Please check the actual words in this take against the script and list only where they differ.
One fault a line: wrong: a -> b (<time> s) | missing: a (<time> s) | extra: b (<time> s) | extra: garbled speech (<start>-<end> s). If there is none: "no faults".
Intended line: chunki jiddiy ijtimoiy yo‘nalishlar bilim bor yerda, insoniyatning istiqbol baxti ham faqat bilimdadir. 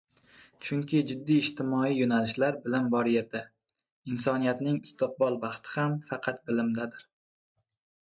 no faults